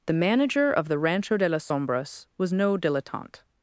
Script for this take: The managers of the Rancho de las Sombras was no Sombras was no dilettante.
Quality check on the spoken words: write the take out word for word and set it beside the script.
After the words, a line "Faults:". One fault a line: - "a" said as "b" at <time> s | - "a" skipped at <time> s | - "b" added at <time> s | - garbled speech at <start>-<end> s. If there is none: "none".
The manager of the Rancho de las Sombras was no dilettante.
Faults:
- "managers" said as "manager" at 0.1 s
- "Sombras was no" skipped at 2.8 s